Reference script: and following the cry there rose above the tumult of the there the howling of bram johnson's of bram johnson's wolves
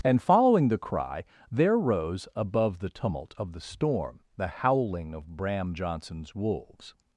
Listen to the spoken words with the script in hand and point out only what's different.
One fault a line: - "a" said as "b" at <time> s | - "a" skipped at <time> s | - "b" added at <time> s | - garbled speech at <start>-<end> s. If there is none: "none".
- "there" said as "storm" at 3.6 s
- "of bram johnson's" skipped at 6.4 s